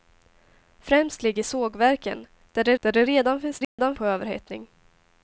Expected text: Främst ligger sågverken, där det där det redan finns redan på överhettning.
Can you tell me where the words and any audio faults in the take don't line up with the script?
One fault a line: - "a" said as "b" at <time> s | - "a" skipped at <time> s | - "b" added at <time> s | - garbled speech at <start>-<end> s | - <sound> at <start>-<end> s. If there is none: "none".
- dropout at 3.6-3.8 s